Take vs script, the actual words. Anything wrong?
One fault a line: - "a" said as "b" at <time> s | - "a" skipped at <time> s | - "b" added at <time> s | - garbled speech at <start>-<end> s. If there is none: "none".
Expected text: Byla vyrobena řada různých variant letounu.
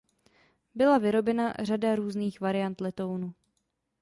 none